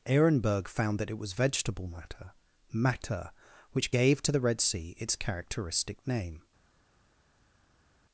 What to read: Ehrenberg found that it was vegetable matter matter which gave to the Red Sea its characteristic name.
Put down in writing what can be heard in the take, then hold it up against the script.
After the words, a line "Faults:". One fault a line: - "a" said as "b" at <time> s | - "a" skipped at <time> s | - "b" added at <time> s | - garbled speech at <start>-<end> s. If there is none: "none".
Ehrenberg found that it was vegetable matter matter which gave to the Red Sea its characteristic name.
Faults:
none